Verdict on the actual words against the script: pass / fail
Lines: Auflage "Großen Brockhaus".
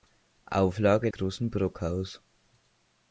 pass